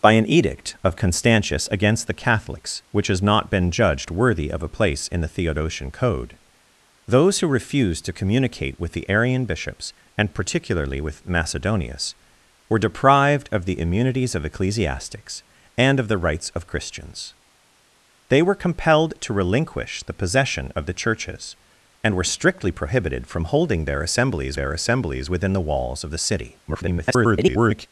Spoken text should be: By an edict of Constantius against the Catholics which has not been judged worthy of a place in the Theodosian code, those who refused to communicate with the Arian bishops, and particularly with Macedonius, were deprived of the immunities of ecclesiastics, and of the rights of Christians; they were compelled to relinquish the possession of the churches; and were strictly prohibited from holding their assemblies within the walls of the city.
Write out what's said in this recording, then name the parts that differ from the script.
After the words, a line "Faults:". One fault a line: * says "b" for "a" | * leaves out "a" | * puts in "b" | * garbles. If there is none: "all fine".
By an edict of Constantius against the Catholics which has not been judged worthy of a place in the Theodosian code, those who refused to communicate with the Arian bishops, and particularly with Macedonius, were deprived of the immunities of ecclesiastics, and of the rights of Christians; they were compelled to relinquish the possession of the churches; and were strictly prohibited from holding their assemblies their assemblies within the walls of the city. [garbled]
Faults:
* puts in "their assemblies"
* garbles